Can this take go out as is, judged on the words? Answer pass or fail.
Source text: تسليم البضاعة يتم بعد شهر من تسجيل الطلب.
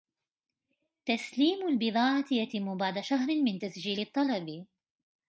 pass